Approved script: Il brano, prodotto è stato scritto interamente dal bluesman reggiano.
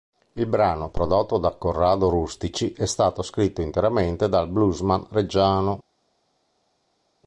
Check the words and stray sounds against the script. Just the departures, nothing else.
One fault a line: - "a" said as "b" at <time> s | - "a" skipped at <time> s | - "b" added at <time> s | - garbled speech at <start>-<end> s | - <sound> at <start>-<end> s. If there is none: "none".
- "da Corrado Rustici" added at 1.4 s